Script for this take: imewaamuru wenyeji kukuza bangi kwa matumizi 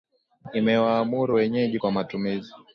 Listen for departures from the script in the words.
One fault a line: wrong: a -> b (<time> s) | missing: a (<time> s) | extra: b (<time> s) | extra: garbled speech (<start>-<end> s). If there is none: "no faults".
missing: kukuza bangi (1.8 s)